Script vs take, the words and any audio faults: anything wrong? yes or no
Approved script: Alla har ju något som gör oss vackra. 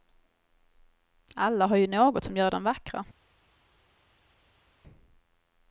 yes